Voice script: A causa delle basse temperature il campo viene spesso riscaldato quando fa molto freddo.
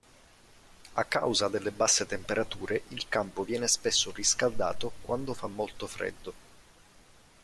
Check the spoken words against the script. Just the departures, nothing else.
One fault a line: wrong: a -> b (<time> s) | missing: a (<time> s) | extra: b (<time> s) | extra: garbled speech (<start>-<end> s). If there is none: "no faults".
no faults